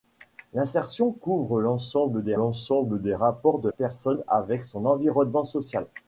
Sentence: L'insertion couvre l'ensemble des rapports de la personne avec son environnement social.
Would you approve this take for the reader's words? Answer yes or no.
no